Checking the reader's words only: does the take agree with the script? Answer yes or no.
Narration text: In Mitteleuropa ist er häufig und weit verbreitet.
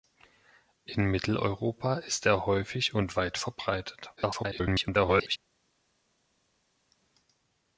no